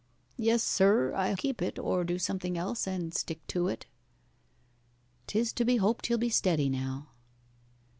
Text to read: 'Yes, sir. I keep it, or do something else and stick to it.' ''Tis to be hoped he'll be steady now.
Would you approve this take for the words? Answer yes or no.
yes